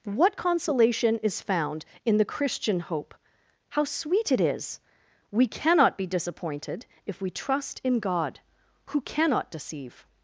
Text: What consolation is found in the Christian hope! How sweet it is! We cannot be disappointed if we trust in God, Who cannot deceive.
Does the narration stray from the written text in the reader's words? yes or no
no